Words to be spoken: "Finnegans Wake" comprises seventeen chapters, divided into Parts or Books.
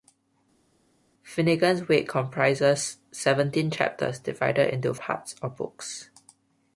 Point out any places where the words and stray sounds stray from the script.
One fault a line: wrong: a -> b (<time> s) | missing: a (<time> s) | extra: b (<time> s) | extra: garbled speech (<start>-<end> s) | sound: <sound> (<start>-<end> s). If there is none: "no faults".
no faults